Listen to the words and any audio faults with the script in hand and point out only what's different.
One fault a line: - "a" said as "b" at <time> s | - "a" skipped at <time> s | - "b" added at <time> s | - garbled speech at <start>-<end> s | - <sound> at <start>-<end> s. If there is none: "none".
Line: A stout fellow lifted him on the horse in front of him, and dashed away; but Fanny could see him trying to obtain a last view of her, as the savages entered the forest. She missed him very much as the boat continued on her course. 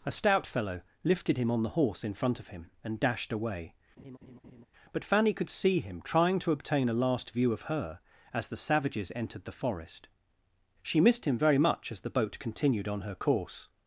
- laugh at 4.0-4.7 s